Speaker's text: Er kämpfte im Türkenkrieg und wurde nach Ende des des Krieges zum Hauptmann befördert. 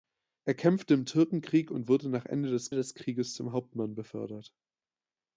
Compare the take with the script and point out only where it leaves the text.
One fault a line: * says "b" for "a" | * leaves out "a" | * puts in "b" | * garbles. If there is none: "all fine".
all fine